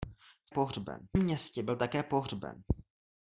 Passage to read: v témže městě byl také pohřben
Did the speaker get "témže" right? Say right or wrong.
wrong